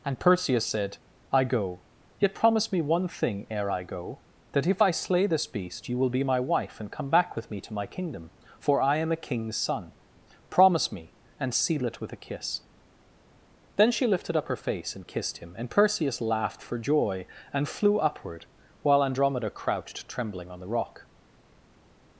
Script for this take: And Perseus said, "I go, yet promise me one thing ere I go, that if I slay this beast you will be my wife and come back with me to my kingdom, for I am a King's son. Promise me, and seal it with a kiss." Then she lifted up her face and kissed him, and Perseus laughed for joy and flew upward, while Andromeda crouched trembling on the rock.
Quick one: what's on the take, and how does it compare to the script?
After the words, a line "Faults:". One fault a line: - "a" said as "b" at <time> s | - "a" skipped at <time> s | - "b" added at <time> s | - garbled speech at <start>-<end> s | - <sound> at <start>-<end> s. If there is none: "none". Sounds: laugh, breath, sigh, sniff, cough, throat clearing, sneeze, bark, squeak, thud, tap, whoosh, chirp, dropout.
And Perseus said, "I go, yet promise me one thing ere I go, that if I slay this beast you will be my wife and come back with me to my kingdom, for I am a King's son. Promise me, and seal it with a kiss." Then she lifted up her face and kissed him, and Perseus laughed for joy and flew upward, while Andromeda crouched trembling on the rock.
Faults:
none